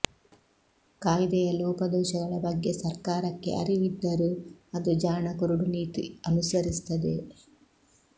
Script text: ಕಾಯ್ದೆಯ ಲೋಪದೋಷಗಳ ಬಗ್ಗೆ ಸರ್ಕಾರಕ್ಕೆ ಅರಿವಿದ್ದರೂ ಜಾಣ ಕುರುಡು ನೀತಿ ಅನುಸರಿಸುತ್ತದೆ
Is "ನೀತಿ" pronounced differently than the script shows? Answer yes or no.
no